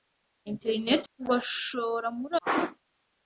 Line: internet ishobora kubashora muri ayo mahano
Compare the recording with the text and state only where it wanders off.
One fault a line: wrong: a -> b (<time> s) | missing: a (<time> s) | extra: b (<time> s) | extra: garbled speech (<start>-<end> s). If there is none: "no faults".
missing: ishobora (1.0 s)
missing: ayo (2.3 s)